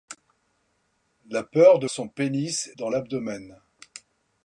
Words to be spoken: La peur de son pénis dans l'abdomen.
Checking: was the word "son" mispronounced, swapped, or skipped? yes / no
no